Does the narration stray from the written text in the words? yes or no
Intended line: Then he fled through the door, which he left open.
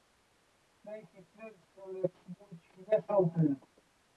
yes